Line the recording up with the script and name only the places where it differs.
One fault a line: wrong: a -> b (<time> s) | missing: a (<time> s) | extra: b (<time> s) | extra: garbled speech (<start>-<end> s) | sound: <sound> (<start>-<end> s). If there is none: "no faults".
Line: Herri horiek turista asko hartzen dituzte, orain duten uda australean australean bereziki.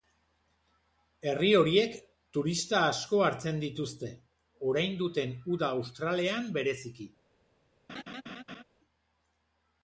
missing: australean (6.5 s)
sound: laugh (7.9-8.6 s)